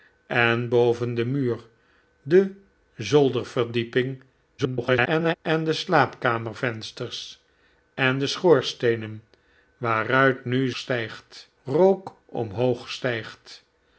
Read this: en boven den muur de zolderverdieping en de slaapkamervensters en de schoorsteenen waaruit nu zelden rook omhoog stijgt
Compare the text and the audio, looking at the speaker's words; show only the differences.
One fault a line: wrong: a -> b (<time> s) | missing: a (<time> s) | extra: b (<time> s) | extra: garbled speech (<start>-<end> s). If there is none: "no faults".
extra: garbled speech (4.6-5.4 s)
wrong: zelden -> stijgt (10.8 s)